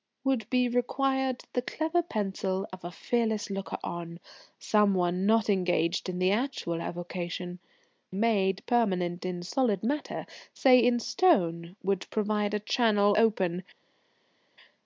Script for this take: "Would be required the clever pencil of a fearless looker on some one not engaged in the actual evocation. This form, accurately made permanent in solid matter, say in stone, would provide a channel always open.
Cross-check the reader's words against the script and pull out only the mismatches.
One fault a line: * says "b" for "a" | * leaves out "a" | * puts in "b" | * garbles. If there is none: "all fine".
* leaves out "This form accurately"
* leaves out "always"